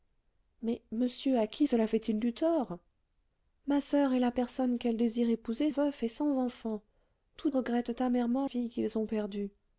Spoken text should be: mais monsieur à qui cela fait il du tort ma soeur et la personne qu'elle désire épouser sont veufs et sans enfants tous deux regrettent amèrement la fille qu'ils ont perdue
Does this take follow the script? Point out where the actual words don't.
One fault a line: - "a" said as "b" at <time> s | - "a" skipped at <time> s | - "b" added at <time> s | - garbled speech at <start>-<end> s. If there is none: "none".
- "sont" skipped at 5.7 s
- "deux" skipped at 7.5 s
- "la" skipped at 8.5 s